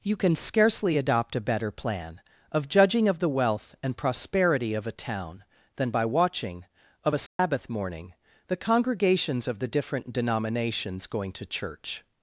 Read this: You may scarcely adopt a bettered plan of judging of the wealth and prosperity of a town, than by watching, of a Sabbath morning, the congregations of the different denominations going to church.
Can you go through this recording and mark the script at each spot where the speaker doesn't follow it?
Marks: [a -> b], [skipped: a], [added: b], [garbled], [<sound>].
You [may -> can] scarcely adopt a [bettered -> better] plan of judging of the wealth and prosperity of a town, than by watching, of a Sabbath [dropout] morning, the congregations of the different denominations going to church.